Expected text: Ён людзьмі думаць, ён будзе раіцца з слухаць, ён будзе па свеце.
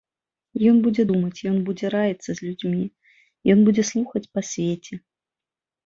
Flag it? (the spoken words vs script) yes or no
yes